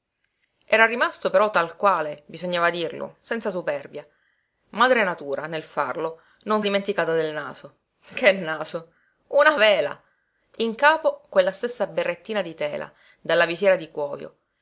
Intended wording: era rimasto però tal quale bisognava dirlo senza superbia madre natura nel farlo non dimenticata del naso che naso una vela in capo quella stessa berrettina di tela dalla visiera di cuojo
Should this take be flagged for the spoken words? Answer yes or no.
no